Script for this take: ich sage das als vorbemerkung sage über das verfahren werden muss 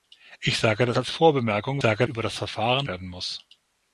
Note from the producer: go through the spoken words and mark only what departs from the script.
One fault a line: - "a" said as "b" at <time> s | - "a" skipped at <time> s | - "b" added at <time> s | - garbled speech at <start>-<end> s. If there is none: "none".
none